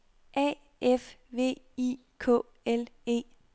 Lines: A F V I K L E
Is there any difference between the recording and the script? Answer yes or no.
no